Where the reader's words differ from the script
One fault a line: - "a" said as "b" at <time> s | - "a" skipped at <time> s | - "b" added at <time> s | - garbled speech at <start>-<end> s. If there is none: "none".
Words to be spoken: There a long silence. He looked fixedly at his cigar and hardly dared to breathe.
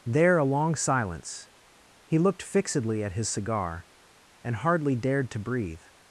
none